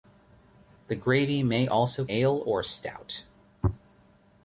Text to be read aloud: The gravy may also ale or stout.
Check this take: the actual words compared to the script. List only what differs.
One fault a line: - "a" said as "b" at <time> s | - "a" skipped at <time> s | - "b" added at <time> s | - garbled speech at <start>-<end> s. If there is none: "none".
none